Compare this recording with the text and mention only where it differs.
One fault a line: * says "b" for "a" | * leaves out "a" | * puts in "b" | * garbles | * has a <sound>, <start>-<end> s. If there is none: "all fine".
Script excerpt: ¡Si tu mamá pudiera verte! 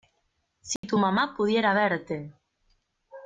* has a dropout, 0.8-0.8 s